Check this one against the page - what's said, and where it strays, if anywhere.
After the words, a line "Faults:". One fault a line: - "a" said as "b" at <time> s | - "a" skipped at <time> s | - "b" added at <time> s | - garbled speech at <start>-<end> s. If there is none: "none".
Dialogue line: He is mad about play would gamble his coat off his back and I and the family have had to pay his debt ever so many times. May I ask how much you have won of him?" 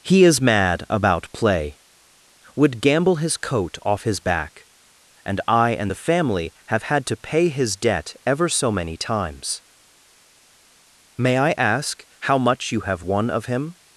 He is mad about play would gamble his coat off his back and I and the family have had to pay his debt ever so many times. May I ask how much you have won of him?"
Faults:
none